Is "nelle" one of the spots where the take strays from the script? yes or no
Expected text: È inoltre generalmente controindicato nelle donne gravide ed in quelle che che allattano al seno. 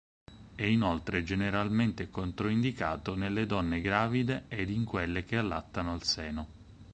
no